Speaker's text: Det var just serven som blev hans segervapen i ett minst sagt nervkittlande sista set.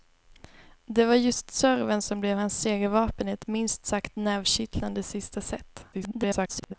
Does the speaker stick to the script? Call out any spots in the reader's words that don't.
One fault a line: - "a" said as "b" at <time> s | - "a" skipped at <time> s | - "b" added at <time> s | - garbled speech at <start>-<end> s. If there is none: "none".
- garbled speech at 5.9-6.7 s